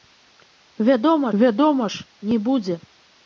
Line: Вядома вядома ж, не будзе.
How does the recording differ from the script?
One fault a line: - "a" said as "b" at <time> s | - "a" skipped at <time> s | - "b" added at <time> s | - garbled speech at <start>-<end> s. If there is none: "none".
none